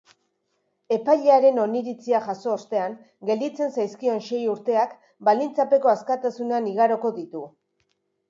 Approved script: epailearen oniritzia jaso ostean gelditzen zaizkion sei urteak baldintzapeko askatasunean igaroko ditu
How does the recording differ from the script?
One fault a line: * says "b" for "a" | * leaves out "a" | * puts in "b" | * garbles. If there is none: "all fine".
all fine